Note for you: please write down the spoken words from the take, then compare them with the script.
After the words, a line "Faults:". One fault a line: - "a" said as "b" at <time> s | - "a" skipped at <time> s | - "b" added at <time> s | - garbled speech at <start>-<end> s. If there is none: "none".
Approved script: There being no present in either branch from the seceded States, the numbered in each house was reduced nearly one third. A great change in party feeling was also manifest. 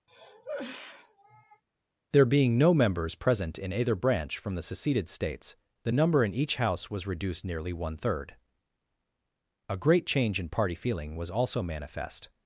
There being no members present in either branch from the seceded States, the number in each house was reduced nearly one third. A great change in party feeling was also manifest.
Faults:
- "members" added at 2.7 s
- "numbered" said as "number" at 5.9 s